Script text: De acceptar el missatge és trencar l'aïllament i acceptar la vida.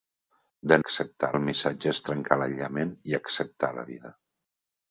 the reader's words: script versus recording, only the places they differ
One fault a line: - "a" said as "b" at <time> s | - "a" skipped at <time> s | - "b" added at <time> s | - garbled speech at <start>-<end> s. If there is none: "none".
none